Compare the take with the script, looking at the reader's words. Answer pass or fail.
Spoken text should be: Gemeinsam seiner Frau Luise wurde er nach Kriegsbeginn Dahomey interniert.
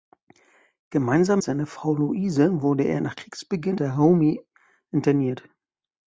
pass